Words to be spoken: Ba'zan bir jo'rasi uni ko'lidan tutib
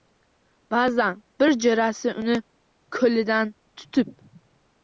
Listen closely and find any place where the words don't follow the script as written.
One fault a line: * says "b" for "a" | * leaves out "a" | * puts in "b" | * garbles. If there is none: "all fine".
all fine